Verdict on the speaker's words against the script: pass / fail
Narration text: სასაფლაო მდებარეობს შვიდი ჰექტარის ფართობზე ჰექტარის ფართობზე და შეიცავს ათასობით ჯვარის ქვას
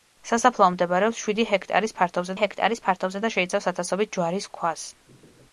pass